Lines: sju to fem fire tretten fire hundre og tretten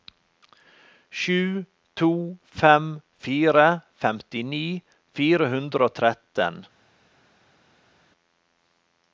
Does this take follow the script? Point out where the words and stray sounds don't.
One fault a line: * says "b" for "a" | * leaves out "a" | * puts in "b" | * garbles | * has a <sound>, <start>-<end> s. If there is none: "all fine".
* says "femtini" for "tretten"